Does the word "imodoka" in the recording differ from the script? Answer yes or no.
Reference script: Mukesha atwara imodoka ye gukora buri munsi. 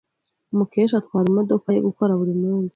no